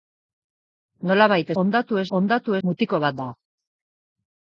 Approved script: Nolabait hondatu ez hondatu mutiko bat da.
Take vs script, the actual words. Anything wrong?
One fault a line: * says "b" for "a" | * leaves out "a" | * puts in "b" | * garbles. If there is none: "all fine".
all fine